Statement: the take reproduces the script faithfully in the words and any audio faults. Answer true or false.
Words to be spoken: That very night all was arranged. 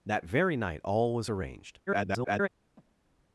false